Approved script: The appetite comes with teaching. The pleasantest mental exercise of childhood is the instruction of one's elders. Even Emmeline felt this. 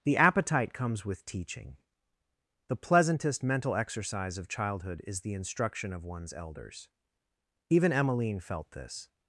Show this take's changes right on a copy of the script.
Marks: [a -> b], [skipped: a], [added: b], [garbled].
The appetite comes with teaching. The pleasantest mental exercise of childhood is the instruction of one's elders. Even Emmeline felt this.